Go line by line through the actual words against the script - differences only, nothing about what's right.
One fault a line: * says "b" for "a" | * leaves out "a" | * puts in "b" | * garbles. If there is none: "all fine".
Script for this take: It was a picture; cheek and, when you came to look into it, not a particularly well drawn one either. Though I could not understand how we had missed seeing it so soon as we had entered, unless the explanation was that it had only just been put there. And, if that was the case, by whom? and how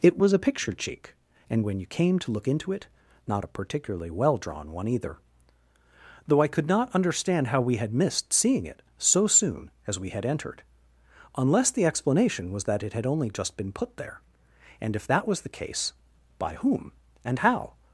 all fine